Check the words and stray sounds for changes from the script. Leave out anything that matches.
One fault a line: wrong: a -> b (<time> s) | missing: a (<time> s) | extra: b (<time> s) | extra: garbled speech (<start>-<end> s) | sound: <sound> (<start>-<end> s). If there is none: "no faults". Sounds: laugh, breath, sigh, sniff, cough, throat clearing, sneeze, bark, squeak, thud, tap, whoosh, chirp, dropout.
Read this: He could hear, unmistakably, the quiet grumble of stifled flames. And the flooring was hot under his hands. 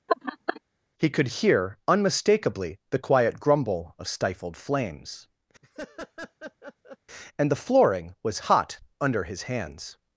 sound: laugh (0.1-0.6 s)
sound: laugh (5.6-7.0 s)